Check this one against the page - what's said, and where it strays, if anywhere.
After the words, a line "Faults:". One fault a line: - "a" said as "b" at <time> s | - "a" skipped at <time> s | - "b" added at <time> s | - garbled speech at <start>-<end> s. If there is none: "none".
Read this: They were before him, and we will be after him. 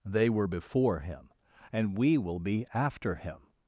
They were before him, and we will be after him.
Faults:
none